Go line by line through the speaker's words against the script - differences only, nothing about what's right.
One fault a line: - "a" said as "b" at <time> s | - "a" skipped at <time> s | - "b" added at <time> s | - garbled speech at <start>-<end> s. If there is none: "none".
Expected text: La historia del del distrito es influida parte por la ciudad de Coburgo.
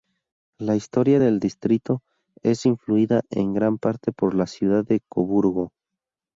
- "del" skipped at 1.4 s
- "en gran" added at 3.3 s